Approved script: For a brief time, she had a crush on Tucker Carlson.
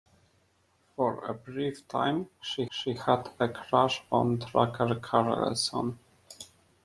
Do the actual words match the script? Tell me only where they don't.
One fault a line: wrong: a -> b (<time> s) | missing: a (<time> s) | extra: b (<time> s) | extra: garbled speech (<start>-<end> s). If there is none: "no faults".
extra: she (2.7 s)